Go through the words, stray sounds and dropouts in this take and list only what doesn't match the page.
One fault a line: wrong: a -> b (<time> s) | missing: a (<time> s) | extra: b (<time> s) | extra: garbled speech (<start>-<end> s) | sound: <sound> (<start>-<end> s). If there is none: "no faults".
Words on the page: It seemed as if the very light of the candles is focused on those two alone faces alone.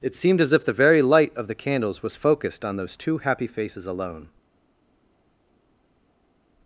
wrong: is -> was (2.0 s)
wrong: alone -> happy (3.2 s)